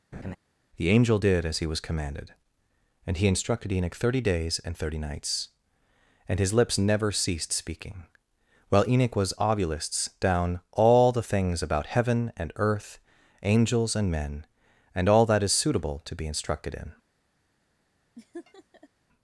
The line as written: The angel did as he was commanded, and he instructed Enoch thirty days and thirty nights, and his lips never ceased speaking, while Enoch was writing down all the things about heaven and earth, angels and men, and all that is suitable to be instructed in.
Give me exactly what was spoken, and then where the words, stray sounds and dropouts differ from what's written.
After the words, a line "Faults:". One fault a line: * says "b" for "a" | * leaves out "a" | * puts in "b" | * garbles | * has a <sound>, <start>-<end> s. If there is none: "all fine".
The angel did as he was commanded, and he instructed Enoch thirty days and thirty nights, and his lips never ceased speaking, while Enoch was ovulists down all the things about heaven and earth, angels and men, and all that is suitable to be instructed in.
Faults:
* has a laugh, 0.1-0.4 s
* says "ovulists" for "writing"
* has a laugh, 18.2-18.9 s